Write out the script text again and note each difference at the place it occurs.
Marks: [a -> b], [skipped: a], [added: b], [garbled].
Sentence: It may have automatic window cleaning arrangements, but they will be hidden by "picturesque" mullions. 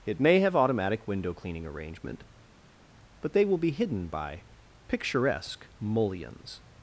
It may have automatic window cleaning [arrangements, -> arrangement] but they will be hidden by "picturesque" mullions.